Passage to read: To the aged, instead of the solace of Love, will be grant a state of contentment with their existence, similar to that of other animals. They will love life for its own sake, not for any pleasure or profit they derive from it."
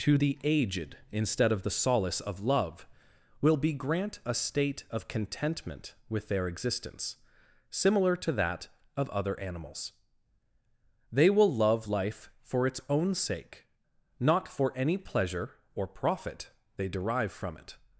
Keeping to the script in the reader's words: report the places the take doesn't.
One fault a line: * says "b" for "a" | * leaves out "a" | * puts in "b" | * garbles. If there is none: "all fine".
all fine